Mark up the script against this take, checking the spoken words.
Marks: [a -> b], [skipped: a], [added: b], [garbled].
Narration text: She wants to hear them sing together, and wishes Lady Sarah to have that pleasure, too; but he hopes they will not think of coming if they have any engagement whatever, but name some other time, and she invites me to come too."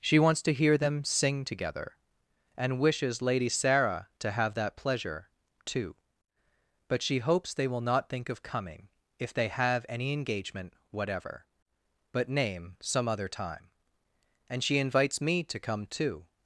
She wants to hear them sing together, and wishes Lady Sarah to have that pleasure, too; but [he -> she] hopes they will not think of coming if they have any engagement whatever, but name some other time, and she invites me to come too."